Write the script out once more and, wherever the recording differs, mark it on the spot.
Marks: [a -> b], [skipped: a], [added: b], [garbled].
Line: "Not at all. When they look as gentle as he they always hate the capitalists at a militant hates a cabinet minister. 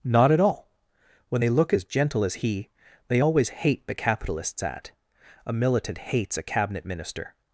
"Not at all. When they look as gentle as he they always hate the capitalists at a militant hates a cabinet minister.